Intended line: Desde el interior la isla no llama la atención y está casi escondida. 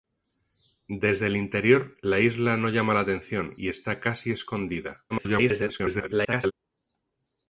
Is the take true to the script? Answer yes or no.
no